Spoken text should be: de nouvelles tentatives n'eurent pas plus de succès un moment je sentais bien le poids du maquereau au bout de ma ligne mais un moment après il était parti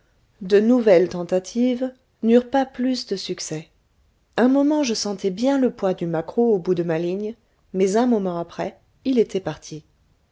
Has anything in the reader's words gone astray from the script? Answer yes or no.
no